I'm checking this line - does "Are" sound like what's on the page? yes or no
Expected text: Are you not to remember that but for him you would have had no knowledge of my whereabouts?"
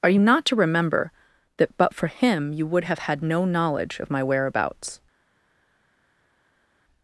yes